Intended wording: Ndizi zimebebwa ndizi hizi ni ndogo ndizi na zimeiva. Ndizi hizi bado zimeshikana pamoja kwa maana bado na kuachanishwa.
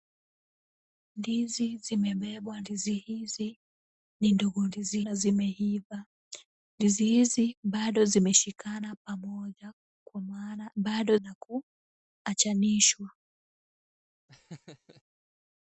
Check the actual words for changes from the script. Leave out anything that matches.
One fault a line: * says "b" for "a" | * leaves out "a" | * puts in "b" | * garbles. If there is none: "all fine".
all fine